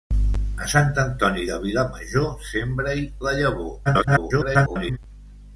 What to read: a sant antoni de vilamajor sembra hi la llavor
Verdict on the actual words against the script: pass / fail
fail